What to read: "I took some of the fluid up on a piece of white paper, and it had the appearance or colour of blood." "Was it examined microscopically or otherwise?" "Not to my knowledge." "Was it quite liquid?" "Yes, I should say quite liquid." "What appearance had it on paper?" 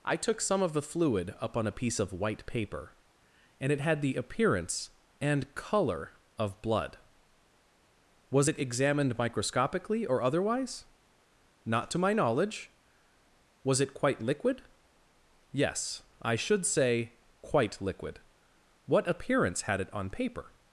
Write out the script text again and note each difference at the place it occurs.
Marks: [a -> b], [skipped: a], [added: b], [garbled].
"I took some of the fluid up on a piece of white paper, and it had the appearance [or -> and] colour of blood." "Was it examined microscopically or otherwise?" "Not to my knowledge." "Was it quite liquid?" "Yes, I should say quite liquid." "What appearance had it on paper?"